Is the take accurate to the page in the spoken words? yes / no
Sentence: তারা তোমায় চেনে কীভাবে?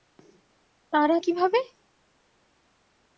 no